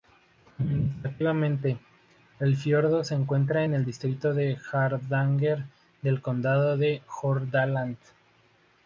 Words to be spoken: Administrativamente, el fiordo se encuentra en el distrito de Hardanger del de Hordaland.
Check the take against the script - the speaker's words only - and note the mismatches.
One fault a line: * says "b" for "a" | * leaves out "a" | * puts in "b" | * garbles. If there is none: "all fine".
* puts in "condado"